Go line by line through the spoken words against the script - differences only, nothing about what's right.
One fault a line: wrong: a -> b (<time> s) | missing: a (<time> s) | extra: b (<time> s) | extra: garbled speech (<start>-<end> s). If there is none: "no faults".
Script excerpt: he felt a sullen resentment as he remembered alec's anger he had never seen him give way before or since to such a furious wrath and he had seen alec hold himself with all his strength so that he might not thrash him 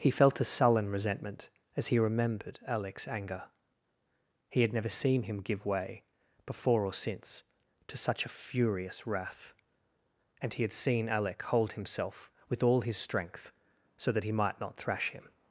no faults